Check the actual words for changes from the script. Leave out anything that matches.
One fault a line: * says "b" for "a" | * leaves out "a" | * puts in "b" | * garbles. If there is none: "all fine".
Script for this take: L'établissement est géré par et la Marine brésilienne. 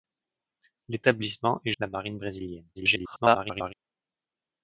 * leaves out "géré par et"
* garbles